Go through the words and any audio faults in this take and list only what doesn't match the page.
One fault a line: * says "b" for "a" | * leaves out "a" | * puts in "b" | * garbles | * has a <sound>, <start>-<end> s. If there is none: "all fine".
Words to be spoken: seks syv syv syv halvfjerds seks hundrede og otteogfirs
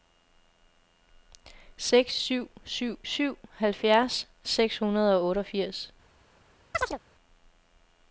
* has a chirp, 6.7-7.0 s